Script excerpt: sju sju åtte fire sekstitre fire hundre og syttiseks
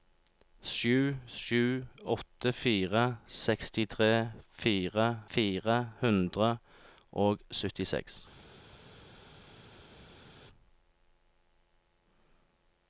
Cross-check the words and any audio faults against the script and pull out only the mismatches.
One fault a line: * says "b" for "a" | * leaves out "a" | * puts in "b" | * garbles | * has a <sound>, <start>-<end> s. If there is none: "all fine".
* puts in "fire"